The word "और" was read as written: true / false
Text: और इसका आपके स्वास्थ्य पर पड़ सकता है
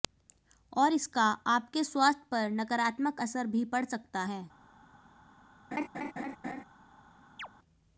true